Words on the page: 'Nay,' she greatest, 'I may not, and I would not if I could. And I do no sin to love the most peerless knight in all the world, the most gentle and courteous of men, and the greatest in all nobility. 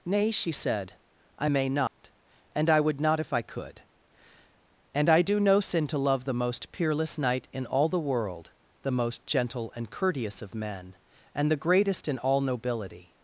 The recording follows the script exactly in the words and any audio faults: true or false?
false